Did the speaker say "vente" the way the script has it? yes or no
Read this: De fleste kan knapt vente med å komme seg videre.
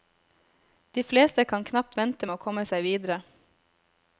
yes